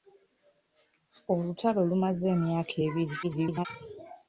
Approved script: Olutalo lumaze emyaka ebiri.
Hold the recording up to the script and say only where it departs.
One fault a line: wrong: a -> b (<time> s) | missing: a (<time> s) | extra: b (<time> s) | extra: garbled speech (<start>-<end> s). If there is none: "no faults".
extra: garbled speech (3.2-3.7 s)